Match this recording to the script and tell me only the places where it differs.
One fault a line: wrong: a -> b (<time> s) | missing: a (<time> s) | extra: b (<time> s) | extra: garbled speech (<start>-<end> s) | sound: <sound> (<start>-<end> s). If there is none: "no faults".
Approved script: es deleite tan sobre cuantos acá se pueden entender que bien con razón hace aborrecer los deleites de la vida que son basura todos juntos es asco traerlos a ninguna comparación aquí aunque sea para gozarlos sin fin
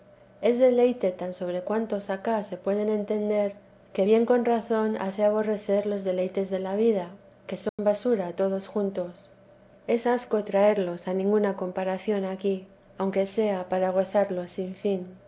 sound: dropout (7.7-7.8 s)